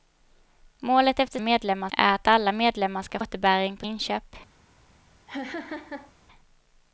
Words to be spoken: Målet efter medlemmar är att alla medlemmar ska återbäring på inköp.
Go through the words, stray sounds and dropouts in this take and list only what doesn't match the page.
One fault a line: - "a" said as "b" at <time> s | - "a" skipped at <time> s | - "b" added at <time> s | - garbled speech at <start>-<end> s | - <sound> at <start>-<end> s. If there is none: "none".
- laugh at 5.3-6.1 s